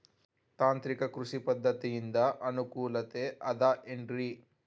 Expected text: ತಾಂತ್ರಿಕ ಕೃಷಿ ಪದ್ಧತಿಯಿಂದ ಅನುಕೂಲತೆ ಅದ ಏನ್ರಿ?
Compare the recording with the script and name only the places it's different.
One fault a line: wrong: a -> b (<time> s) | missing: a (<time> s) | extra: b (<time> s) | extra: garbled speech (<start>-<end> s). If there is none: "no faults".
no faults